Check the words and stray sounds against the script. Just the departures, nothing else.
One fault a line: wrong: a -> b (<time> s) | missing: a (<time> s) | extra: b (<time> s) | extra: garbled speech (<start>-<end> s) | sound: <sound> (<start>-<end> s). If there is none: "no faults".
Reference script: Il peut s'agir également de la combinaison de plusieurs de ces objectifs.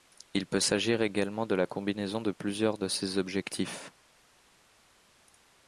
no faults